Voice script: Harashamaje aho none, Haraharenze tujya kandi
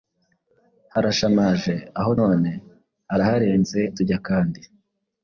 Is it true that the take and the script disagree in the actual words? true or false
false